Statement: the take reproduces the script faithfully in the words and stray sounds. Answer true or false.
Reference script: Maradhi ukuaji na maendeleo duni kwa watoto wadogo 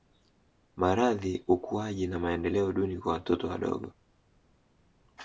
true